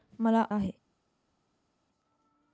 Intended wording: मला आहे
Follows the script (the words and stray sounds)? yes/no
yes